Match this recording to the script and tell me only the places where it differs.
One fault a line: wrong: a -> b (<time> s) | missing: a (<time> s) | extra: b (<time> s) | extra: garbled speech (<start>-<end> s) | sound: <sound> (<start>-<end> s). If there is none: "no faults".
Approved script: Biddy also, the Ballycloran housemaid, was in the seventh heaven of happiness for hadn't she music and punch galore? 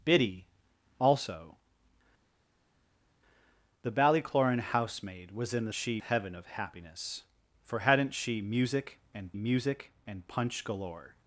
wrong: seventh -> she (5.7 s)
extra: music and (9.3 s)